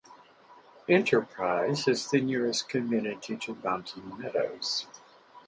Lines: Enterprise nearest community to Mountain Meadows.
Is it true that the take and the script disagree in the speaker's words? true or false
true